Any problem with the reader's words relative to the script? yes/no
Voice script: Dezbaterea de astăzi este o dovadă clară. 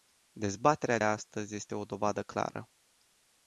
yes